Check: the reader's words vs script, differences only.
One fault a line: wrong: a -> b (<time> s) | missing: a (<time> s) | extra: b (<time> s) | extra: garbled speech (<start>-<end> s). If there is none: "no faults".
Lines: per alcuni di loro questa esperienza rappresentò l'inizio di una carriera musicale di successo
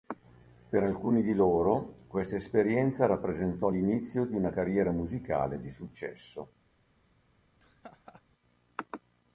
no faults